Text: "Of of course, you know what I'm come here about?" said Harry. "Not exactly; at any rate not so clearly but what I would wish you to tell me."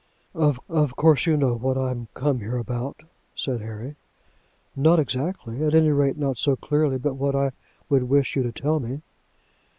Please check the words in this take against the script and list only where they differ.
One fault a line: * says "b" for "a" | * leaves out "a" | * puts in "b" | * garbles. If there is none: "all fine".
all fine